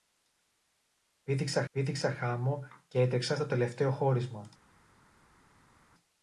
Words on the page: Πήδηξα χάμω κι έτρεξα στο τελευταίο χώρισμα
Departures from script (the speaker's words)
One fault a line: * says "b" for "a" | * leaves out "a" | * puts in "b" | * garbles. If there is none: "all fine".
* puts in "πήδηξα"